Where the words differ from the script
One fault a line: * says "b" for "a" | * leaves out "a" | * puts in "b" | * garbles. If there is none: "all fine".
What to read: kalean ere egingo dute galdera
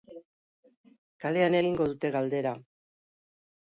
* leaves out "ere"